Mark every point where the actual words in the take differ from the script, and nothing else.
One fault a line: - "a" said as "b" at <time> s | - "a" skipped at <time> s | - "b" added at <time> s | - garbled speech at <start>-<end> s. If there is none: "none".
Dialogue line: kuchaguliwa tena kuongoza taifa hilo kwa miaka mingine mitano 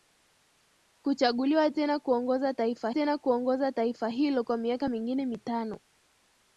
- "tena kuongoza taifa" added at 2.9 s